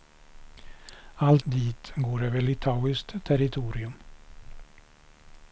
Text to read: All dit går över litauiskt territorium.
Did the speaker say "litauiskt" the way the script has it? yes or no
yes